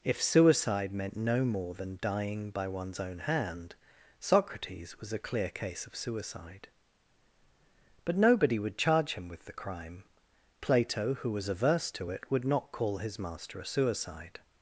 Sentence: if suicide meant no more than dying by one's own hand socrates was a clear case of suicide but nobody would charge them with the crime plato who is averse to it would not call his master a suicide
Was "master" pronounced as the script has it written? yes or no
yes